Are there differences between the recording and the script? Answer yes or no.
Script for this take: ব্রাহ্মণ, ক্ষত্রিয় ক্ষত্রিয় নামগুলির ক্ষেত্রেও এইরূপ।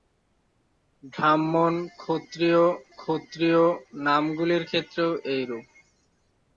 no